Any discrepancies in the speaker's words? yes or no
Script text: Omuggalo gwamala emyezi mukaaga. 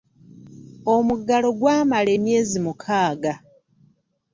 no